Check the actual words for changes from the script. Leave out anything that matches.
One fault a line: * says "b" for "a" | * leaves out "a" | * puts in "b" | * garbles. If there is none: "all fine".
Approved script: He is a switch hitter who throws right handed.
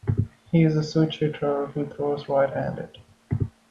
all fine